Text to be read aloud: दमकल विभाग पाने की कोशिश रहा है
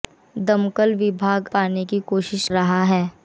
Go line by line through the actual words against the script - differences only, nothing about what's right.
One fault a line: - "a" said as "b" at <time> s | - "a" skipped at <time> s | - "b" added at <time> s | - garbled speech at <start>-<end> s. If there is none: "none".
none